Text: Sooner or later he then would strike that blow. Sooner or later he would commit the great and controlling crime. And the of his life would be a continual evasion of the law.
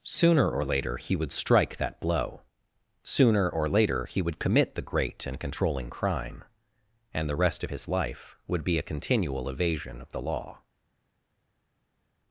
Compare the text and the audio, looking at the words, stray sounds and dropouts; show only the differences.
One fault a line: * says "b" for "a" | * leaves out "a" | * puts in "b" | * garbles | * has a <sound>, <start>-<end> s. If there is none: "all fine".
* leaves out "then"
* puts in "rest"